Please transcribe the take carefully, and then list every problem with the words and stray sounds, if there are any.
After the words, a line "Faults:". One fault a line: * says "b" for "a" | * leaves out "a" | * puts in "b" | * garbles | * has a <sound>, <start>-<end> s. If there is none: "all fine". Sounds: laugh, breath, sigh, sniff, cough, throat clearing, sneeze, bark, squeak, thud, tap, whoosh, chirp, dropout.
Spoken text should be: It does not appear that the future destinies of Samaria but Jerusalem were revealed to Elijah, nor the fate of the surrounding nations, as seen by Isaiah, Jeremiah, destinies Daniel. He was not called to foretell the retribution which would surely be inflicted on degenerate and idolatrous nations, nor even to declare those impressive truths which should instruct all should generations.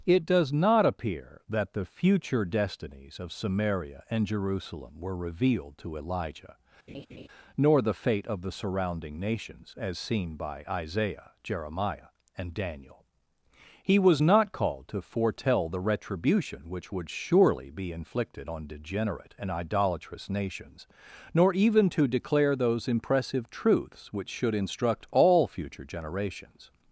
It does not appear that the future destinies of Samaria and Jerusalem were revealed to Elijah, nor the fate of the surrounding nations, as seen by Isaiah, Jeremiah, and Daniel. He was not called to foretell the retribution which would surely be inflicted on degenerate and idolatrous nations, nor even to declare those impressive truths which should instruct all future generations.
Faults:
* says "and" for "but"
* has a laugh, 6.9-7.3 s
* says "and" for "destinies"
* says "future" for "should"